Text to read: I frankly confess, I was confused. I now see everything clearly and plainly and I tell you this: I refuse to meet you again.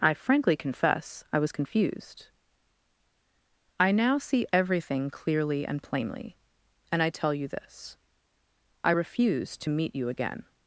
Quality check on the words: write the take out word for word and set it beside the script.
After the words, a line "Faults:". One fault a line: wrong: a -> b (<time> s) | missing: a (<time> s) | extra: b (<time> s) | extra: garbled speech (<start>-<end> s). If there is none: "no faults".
I frankly confess, I was confused. I now see everything clearly and plainly and I tell you this: I refuse to meet you again.
Faults:
no faults